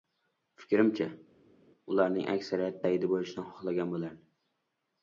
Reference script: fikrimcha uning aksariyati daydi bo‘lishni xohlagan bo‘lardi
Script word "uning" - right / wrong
wrong